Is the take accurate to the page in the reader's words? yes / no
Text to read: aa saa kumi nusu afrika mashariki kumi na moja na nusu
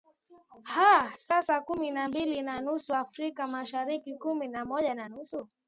no